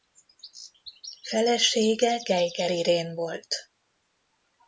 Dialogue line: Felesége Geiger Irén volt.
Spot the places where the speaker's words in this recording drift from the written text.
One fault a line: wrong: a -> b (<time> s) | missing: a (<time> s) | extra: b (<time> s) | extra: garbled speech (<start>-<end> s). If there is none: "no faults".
no faults